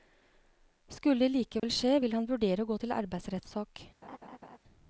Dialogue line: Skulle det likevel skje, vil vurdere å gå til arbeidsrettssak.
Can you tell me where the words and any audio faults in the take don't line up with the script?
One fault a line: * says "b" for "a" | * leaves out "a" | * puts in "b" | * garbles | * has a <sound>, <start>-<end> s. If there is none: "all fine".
* has a dropout, 1.6-1.6 s
* puts in "han"
* has a laugh, 4.0-4.6 s